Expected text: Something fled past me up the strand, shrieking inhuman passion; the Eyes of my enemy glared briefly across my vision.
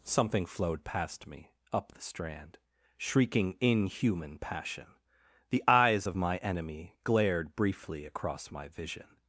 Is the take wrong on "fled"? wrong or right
wrong